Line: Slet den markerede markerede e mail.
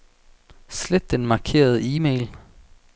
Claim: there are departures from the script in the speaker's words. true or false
true